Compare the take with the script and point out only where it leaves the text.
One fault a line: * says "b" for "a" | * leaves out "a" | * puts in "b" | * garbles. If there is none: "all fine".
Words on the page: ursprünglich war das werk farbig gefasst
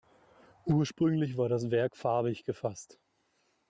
all fine